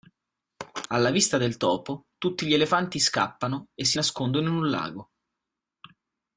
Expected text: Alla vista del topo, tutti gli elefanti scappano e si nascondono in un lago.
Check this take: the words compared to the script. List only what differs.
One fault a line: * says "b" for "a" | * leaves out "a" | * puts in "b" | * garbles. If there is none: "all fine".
all fine